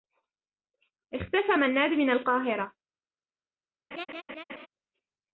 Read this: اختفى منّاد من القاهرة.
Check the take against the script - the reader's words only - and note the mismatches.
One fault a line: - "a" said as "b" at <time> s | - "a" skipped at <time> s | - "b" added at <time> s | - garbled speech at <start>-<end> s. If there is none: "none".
none